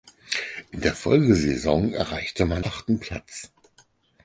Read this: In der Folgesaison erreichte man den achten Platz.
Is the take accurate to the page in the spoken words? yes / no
no